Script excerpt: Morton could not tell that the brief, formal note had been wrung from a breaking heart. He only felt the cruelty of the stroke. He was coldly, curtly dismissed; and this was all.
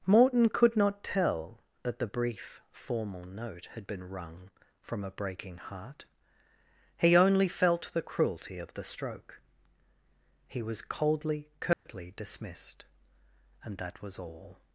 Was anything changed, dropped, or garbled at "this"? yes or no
yes